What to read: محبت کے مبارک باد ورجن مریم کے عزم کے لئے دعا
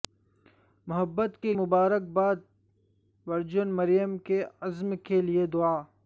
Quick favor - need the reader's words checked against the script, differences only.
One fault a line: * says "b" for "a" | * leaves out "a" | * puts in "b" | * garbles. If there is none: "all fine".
all fine